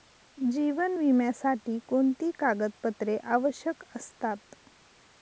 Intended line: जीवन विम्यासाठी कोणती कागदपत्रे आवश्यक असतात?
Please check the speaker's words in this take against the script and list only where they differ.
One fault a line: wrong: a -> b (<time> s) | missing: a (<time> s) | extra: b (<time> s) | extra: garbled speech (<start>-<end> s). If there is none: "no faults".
no faults